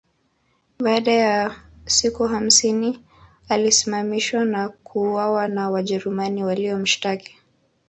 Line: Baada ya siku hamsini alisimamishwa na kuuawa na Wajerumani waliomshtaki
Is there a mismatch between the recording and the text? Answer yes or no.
no